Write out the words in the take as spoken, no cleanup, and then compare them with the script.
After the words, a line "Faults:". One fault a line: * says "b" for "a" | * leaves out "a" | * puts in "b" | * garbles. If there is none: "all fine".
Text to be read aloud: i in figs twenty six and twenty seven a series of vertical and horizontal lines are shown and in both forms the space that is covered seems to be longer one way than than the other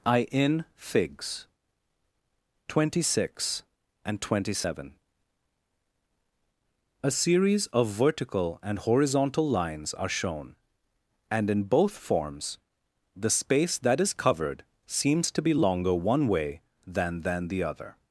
i in figs twenty six and twenty seven a series of vertical and horizontal lines are shown and in both forms the space that is covered seems to be longer one way than than the other
Faults:
all fine